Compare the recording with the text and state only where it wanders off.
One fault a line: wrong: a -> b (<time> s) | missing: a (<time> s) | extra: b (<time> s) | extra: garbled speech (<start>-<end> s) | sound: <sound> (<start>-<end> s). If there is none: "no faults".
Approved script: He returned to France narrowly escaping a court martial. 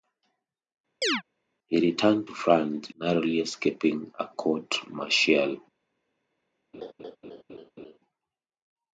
sound: chirp (1.0-1.2 s)
sound: laugh (6.7-8.0 s)